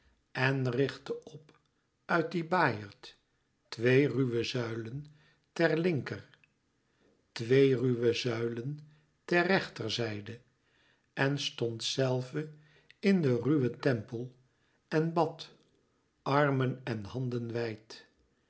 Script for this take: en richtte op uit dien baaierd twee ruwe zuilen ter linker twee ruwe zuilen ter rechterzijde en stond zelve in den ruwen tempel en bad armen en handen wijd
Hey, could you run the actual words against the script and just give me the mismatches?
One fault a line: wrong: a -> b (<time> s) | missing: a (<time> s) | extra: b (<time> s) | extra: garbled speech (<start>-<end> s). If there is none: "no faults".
no faults